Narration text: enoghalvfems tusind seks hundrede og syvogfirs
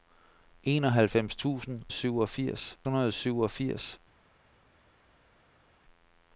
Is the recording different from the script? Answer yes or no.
yes